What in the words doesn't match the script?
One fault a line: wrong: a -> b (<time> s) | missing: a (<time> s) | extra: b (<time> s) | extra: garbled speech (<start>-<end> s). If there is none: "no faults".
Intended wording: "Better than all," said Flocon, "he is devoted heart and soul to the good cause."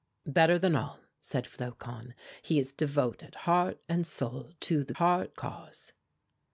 wrong: good -> heart (5.0 s)